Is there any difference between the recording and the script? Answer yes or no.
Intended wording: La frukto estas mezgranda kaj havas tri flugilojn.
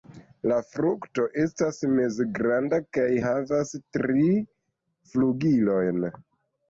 no